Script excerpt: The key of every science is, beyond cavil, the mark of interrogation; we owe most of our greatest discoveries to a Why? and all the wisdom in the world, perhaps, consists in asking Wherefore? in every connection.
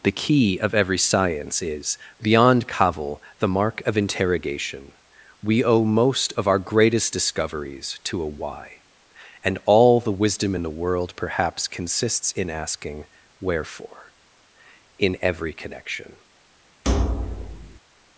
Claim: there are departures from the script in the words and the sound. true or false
true